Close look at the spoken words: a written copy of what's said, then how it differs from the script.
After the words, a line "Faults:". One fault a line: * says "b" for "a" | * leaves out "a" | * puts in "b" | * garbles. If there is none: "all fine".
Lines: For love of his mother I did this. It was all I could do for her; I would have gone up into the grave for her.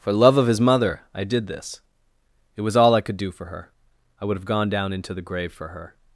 For love of his mother I did this. It was all I could do for her; I would have gone down into the grave for her.
Faults:
* says "down" for "up"